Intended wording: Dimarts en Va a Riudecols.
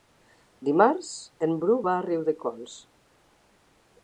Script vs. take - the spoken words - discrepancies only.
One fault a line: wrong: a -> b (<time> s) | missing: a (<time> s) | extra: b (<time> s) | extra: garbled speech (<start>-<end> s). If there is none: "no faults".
extra: Bru (1.6 s)